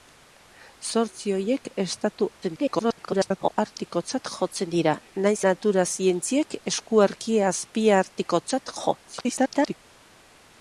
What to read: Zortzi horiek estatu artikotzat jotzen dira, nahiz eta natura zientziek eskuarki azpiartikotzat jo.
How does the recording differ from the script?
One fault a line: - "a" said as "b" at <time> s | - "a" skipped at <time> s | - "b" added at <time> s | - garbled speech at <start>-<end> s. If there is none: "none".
- garbled speech at 2.4-3.6 s
- "eta" skipped at 5.4 s
- garbled speech at 9.1-9.8 s